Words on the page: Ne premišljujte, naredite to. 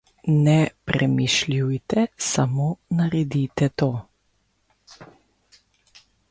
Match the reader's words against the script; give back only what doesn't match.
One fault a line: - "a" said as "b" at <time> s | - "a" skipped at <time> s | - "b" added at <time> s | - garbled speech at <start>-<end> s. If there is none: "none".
- "samo" added at 2.2 s